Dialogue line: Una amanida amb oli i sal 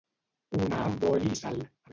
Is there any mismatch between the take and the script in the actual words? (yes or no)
yes